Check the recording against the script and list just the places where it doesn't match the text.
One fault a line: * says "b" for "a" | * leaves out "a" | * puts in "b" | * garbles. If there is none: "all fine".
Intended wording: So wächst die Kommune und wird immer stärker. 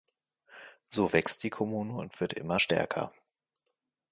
all fine